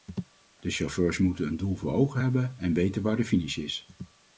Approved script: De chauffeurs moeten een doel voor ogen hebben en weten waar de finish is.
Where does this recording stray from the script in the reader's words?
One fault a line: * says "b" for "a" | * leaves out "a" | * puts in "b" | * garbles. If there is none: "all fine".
all fine